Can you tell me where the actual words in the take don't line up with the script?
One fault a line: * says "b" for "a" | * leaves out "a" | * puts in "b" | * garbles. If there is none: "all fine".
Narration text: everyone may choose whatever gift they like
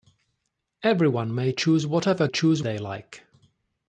* says "choose" for "gift"